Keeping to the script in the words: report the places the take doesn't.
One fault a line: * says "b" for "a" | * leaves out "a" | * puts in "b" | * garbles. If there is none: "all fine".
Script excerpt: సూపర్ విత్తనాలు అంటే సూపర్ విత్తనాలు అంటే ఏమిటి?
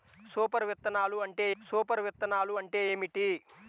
all fine